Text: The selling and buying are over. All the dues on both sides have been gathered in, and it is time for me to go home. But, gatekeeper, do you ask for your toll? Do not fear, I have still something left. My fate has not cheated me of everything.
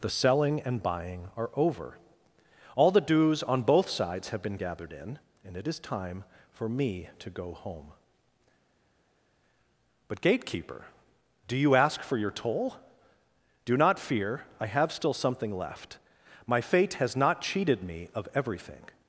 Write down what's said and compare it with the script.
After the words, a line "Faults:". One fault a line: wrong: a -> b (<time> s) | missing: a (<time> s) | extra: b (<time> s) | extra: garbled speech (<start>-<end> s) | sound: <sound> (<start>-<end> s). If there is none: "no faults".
The selling and buying are over. All the dues on both sides have been gathered in, and it is time for me to go home. But, gatekeeper, do you ask for your toll? Do not fear, I have still something left. My fate has not cheated me of everything.
Faults:
no faults